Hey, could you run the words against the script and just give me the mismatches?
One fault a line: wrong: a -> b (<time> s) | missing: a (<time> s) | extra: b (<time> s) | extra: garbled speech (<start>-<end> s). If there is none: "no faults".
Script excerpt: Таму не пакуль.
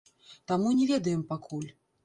extra: ведаем (0.9 s)